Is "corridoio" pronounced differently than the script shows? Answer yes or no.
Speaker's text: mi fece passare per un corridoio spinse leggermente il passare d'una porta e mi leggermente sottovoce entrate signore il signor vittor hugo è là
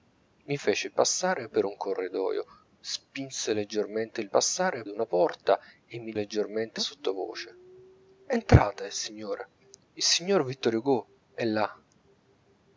no